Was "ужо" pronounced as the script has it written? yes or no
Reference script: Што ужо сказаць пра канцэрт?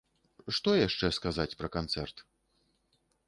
no